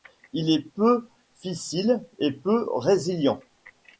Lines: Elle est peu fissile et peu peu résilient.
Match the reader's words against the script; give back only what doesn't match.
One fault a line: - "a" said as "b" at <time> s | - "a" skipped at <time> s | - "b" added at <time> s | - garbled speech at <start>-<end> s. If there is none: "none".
- "Elle" said as "Il" at 0.3 s
- "peu" skipped at 2.6 s